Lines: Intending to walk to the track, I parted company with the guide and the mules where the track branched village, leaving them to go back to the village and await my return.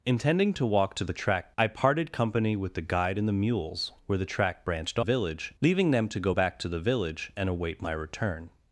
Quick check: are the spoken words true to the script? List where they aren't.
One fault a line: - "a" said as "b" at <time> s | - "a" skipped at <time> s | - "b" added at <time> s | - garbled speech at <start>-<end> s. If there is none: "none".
none